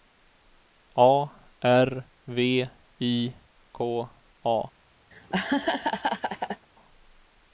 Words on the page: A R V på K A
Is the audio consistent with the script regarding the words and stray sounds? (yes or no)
no